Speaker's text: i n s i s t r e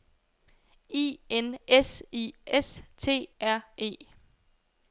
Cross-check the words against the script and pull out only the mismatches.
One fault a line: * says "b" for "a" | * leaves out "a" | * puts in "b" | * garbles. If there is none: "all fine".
all fine